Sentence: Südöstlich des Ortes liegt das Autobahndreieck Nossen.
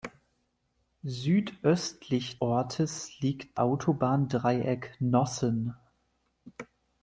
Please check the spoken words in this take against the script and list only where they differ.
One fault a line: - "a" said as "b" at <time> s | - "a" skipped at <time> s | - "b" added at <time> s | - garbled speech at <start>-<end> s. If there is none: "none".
- "des" skipped at 2.4 s
- "das" skipped at 3.6 s